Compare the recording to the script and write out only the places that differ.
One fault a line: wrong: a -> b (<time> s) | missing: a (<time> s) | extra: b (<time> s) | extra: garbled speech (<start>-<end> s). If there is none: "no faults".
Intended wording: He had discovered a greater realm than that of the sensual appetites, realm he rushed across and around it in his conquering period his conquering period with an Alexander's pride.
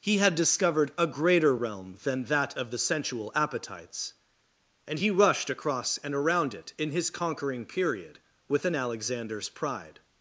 wrong: realm -> and (4.9 s)
missing: his conquering period (8.2 s)